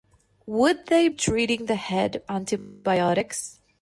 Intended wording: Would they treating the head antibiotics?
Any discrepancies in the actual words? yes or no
no